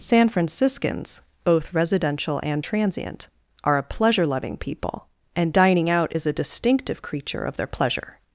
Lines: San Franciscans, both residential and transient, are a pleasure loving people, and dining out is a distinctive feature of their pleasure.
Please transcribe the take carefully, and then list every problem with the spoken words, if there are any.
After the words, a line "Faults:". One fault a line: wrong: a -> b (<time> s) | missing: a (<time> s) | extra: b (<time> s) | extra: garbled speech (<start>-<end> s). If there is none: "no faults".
San Franciscans, both residential and transient, are a pleasure loving people, and dining out is a distinctive creature of their pleasure.
Faults:
wrong: feature -> creature (7.0 s)